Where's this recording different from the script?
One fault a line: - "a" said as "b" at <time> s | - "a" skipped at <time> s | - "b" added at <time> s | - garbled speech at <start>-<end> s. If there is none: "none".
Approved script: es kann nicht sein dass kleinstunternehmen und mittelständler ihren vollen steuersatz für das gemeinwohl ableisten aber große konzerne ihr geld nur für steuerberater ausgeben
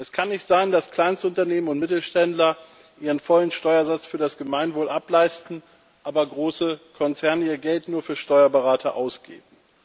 none